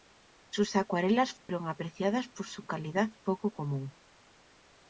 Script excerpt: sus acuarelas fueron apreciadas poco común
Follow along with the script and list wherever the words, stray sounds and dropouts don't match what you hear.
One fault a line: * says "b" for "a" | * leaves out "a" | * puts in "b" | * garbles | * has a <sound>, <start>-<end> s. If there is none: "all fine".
* has a dropout, 1.4-1.5 s
* puts in "por su calidad"